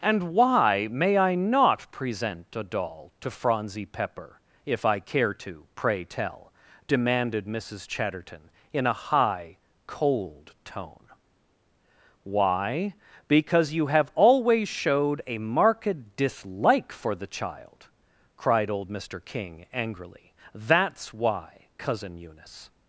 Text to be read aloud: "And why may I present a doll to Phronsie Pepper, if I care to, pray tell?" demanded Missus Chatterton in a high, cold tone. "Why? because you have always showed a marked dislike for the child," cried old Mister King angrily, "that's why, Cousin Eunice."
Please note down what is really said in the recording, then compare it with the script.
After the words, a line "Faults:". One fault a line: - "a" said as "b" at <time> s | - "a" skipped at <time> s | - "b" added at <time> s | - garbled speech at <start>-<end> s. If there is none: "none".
"And why may I not present a doll to Phronsie Pepper, if I care to, pray tell?" demanded Missus Chatterton in a high, cold tone. "Why? because you have always showed a marked dislike for the child," cried old Mister King angrily, "that's why, Cousin Eunice."
Faults:
- "not" added at 1.4 s